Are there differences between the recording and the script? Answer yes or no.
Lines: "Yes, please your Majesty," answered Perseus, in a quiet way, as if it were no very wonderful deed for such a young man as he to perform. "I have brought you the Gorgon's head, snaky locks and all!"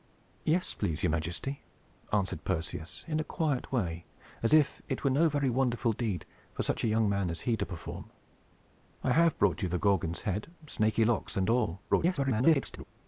yes